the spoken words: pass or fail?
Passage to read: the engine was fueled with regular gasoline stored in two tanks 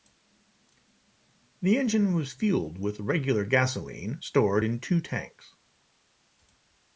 pass